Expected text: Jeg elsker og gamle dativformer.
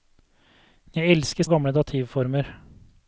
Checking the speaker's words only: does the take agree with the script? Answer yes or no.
yes